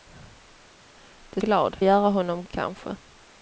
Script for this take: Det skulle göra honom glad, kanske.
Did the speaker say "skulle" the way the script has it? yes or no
no